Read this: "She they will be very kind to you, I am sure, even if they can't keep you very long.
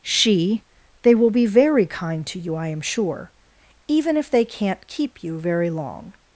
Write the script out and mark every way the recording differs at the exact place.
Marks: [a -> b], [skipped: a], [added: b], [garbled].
"She they will be very kind to you, I am sure, even if they can't keep you very long.